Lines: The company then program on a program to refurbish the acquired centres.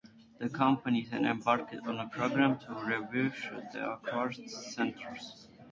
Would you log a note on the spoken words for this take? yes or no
yes